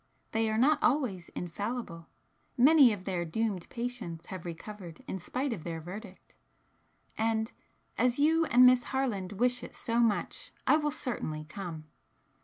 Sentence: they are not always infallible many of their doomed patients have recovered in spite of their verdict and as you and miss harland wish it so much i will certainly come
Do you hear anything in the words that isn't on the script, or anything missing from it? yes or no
no